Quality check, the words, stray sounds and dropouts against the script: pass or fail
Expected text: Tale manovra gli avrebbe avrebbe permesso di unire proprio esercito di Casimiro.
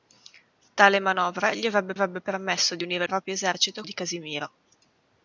pass